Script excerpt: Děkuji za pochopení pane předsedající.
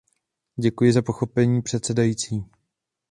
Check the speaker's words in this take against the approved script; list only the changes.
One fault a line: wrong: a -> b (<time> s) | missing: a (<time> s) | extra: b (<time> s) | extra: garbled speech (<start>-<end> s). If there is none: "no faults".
missing: pane (1.6 s)